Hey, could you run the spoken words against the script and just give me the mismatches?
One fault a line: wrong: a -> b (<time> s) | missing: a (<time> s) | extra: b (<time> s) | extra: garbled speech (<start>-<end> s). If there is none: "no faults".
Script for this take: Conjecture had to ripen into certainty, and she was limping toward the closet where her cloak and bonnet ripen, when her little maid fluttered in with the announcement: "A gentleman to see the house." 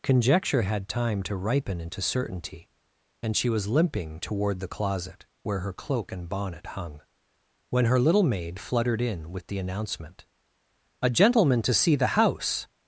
extra: time (0.9 s)
wrong: ripen -> hung (6.7 s)